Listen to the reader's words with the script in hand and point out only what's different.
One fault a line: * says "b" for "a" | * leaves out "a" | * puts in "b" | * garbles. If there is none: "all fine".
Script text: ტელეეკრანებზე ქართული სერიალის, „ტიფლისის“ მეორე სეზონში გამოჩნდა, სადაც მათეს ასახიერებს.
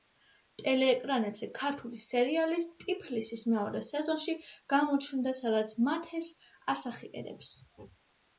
all fine